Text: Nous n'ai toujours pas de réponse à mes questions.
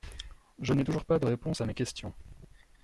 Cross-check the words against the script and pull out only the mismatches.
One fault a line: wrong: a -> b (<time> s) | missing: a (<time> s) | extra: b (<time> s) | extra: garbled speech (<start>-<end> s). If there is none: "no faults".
wrong: Nous -> Je (0.6 s)